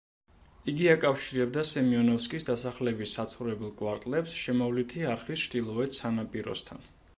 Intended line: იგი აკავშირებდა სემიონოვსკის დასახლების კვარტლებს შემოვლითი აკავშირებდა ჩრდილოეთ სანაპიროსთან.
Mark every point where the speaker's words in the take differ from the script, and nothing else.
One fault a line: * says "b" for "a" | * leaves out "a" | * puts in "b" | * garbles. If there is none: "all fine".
* puts in "საცხოვრებელ"
* says "არხის" for "აკავშირებდა"